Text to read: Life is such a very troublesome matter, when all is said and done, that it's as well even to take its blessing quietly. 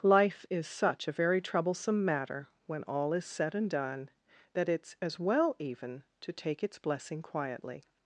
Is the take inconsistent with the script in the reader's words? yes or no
no